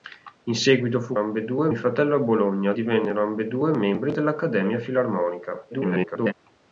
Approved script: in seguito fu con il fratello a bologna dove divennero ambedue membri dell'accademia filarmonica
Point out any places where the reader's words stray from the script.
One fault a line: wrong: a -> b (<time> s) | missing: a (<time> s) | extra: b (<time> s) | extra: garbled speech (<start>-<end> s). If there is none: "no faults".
wrong: con -> ambedue (1.2 s)
missing: dove (2.7 s)
extra: garbled speech (5.7-6.3 s)